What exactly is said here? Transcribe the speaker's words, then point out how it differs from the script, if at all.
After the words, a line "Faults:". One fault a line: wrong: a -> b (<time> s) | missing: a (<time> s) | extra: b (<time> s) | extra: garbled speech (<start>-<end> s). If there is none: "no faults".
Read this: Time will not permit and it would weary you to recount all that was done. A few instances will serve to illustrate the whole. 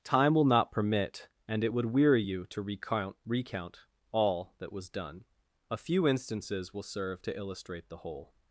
Time will not permit and it would weary you to recount recount all that was done. A few instances will serve to illustrate the whole.
Faults:
extra: recount (3.3 s)